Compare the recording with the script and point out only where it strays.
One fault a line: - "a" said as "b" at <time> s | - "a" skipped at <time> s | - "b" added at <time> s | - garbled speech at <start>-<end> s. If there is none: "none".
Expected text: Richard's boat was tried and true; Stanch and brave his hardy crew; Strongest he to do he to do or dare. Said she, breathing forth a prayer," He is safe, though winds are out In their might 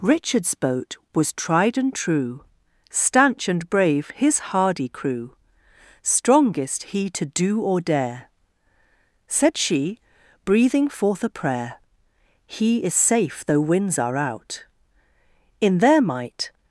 - "he to do" skipped at 7.6 s